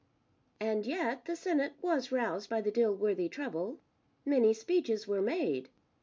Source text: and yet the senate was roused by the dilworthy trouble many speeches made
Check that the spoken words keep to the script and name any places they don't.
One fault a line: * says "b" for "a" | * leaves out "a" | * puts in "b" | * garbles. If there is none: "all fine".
* puts in "were"